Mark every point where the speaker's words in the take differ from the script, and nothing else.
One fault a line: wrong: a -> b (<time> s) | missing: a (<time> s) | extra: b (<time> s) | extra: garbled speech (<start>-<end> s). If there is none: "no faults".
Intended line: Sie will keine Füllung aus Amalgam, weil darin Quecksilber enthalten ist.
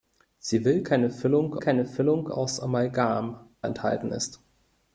extra: keine Füllung (1.6 s)
missing: weil darin Quecksilber (3.5 s)